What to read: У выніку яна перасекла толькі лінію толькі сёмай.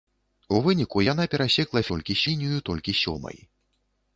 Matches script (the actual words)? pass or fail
pass